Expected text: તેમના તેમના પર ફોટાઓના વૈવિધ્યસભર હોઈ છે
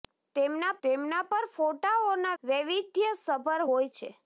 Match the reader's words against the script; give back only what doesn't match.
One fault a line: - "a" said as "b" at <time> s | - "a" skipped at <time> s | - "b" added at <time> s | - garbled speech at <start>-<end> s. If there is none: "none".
none